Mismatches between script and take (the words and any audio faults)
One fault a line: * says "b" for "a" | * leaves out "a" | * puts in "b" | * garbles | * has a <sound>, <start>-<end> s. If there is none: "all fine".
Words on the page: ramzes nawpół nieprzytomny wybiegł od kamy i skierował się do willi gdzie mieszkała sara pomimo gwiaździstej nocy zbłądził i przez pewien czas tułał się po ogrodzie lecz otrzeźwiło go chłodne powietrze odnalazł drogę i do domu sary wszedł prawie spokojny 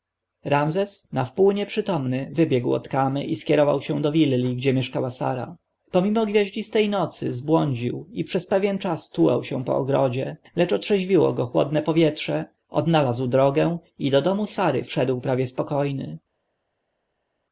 all fine